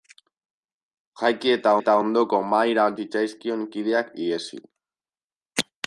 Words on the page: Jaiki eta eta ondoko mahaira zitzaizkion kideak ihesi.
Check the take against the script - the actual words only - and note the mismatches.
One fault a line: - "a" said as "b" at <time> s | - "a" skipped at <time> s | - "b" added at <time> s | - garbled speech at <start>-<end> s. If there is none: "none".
none